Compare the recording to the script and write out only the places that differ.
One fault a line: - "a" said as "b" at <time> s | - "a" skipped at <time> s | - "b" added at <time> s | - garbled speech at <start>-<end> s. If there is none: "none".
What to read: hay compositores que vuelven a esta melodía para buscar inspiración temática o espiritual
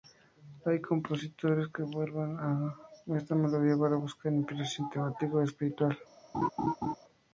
none